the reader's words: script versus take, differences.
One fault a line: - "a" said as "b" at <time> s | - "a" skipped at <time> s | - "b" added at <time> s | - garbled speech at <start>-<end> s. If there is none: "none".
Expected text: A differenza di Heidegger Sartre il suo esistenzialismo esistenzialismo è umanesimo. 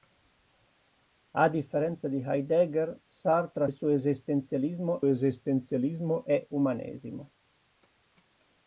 none